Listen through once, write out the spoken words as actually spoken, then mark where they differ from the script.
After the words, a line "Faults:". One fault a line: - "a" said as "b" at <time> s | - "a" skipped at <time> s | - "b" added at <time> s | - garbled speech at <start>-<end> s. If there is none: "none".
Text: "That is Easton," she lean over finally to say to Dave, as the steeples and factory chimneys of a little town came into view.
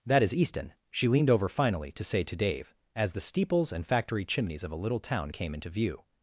"That is Easton," she leaned over finally to say to Dave, as the steeples and factory chimneys of a little town came into view.
Faults:
- "lean" said as "leaned" at 1.1 s